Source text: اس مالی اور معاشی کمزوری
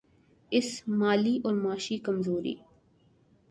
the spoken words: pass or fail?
pass